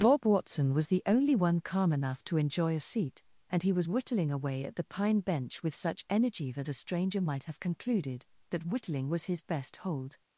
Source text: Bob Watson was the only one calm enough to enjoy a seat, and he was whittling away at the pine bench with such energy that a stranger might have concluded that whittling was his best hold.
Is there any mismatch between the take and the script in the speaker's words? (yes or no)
no